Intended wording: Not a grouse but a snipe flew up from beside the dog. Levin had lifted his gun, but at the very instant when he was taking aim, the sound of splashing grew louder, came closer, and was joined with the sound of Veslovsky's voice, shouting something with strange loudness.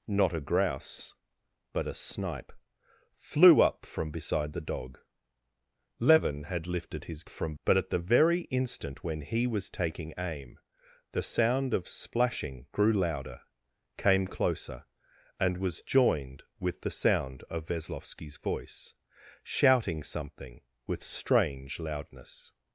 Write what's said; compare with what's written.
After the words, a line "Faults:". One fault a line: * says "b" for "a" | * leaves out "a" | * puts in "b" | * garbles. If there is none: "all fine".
Not a grouse but a snipe flew up from beside the dog. Levin had lifted his from, but at the very instant when he was taking aim, the sound of splashing grew louder, came closer, and was joined with the sound of Veslovsky's voice, shouting something with strange loudness.
Faults:
* says "from" for "gun"